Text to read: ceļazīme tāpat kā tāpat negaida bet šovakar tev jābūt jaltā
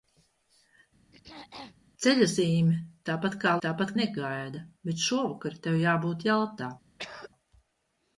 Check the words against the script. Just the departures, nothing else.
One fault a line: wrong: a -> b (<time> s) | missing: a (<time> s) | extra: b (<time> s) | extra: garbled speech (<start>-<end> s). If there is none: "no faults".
no faults